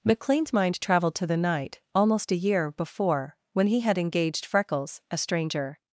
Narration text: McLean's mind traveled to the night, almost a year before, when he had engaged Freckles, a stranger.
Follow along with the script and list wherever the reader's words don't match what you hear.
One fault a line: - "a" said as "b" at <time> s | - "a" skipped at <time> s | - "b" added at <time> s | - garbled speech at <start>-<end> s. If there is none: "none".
none